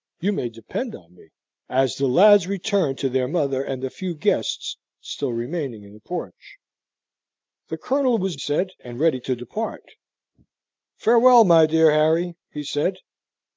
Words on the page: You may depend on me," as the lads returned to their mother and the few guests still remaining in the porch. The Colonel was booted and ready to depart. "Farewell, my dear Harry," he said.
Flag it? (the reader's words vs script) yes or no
yes